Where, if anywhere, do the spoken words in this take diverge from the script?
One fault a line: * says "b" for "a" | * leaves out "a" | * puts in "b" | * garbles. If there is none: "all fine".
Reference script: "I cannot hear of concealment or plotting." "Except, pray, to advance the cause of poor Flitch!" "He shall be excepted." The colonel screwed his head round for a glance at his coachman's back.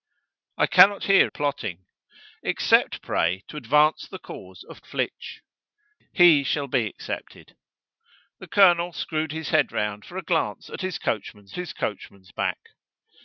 * leaves out "of concealment or"
* leaves out "poor"
* puts in "his coachman's"